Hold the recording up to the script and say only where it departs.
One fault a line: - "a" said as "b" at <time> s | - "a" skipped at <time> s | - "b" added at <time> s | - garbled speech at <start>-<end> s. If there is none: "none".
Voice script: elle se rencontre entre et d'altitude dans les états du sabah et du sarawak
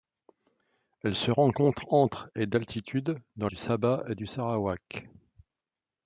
- "les états" skipped at 3.5 s